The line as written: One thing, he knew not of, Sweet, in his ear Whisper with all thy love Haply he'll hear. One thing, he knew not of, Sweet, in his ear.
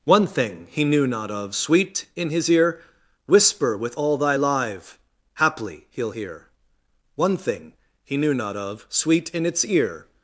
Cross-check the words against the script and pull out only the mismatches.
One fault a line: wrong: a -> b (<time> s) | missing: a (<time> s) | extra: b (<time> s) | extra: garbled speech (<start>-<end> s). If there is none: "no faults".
wrong: love -> live (4.3 s)
wrong: his -> its (9.5 s)